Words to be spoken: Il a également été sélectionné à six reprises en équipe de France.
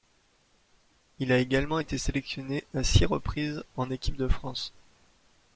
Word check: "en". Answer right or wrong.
right